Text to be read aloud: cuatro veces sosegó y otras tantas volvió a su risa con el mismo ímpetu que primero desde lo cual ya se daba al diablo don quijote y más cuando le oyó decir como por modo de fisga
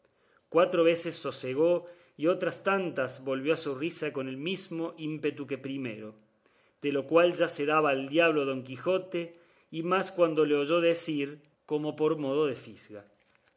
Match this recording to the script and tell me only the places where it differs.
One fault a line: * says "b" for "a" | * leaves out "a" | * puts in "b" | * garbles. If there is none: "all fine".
* says "de" for "desde"